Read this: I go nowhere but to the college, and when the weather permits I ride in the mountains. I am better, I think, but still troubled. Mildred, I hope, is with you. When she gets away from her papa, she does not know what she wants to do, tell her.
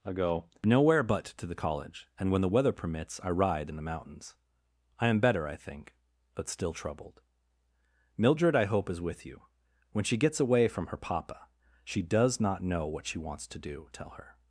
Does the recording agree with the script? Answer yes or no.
yes